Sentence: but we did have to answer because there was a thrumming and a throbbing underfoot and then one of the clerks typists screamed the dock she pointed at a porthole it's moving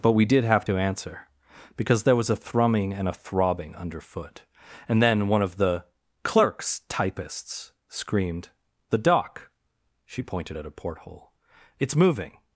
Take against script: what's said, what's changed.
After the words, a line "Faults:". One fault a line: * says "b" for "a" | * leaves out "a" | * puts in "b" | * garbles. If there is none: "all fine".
but we did have to answer because there was a thrumming and a throbbing underfoot and then one of the clerks typists screamed the dock she pointed at a porthole it's moving
Faults:
all fine